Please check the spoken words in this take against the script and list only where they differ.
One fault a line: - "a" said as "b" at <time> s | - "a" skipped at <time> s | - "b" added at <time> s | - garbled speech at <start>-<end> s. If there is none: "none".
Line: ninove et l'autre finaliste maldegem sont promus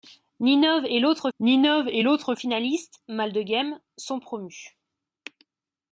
- "ninove et l'autre" added at 1.4 s